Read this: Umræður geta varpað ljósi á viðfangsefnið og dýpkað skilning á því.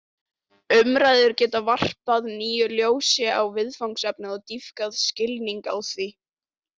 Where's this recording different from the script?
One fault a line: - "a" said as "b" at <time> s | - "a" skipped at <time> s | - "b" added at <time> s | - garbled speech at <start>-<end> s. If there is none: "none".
- "nýju" added at 2.4 s